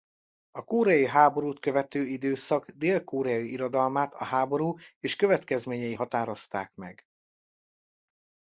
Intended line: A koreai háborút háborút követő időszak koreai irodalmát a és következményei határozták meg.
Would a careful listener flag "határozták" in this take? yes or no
no